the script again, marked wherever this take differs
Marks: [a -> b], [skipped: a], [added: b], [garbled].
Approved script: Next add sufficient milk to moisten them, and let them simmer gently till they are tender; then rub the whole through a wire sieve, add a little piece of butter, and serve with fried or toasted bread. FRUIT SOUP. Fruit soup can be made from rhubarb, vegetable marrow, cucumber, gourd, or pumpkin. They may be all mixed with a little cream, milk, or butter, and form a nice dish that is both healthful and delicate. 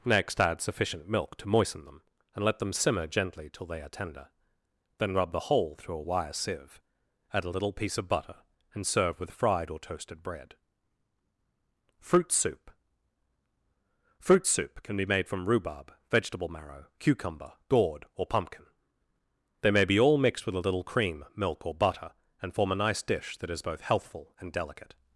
Next add sufficient milk to moisten them, and let them simmer gently till they are tender; then rub the whole through a wire sieve, add a little piece of butter, and serve with fried or toasted bread. FRUIT SOUP. Fruit soup can be made from rhubarb, vegetable marrow, cucumber, gourd, or pumpkin. They may be all mixed with a little cream, milk, or butter, and form a nice dish that is both healthful and delicate.